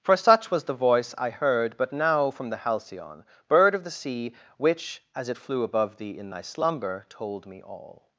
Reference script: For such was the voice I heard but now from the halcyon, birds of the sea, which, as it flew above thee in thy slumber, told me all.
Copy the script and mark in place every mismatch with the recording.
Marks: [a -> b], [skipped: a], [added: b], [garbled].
For such was the voice I heard but now from the halcyon, [birds -> bird] of the sea, which, as it flew above thee in thy slumber, told me all.